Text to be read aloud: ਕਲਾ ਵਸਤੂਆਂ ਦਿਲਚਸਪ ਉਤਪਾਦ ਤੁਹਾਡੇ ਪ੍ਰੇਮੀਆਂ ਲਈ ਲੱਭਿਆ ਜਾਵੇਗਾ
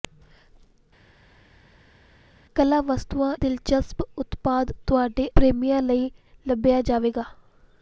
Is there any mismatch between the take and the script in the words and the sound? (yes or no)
no